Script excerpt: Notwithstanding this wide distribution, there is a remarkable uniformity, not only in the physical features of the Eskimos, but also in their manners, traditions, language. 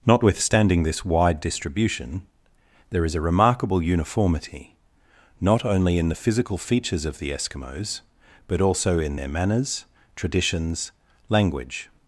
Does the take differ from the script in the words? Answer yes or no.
no